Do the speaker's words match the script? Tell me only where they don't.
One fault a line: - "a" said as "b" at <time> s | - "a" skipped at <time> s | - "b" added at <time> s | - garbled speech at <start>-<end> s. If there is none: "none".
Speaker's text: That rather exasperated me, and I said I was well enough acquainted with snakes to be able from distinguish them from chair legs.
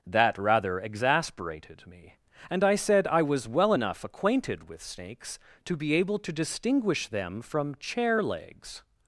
- "from" said as "to" at 6.2 s